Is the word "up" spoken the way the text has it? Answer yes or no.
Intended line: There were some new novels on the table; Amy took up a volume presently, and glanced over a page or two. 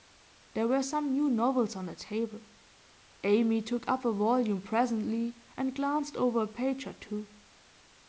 yes